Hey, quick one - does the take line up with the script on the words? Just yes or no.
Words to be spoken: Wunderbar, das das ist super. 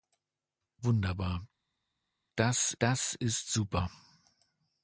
yes